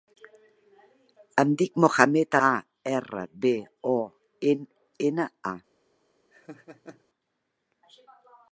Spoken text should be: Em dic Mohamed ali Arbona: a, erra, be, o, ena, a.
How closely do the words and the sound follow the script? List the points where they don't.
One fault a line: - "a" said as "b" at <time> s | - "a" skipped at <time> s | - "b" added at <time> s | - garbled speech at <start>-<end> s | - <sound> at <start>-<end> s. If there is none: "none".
- "ali Arbona" skipped at 2.4 s
- laugh at 6.3-7.0 s